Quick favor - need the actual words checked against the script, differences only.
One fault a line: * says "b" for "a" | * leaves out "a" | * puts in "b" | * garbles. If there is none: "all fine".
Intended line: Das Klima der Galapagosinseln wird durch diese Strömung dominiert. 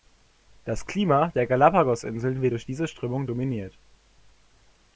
all fine